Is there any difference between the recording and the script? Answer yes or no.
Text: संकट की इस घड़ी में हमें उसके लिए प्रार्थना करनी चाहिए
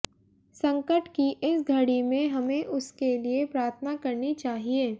no